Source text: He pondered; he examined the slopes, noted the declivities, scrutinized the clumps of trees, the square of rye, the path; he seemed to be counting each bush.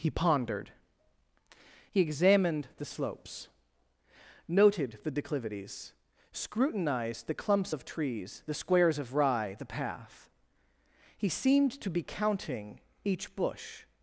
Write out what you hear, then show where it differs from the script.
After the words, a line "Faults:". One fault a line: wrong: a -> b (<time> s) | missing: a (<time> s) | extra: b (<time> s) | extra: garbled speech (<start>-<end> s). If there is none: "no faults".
He pondered; he examined the slopes, noted the declivities, scrutinized the clumps of trees, the squares of rye, the path; he seemed to be counting each bush.
Faults:
wrong: square -> squares (8.5 s)